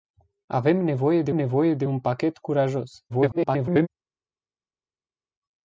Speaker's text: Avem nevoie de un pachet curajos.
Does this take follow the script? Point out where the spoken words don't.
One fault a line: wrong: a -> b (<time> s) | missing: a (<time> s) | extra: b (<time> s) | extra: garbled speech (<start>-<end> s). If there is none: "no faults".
extra: nevoie de (1.3 s)
extra: garbled speech (3.1-3.9 s)